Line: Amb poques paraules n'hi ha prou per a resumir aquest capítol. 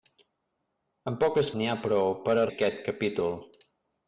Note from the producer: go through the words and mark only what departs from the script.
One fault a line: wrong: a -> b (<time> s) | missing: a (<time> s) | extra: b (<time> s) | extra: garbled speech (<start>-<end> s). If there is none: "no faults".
missing: paraules (1.5 s)
missing: resumir (2.5 s)